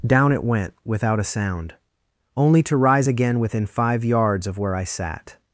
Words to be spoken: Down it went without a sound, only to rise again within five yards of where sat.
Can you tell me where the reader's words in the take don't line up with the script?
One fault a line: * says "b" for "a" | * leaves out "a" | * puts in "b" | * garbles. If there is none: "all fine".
* puts in "I"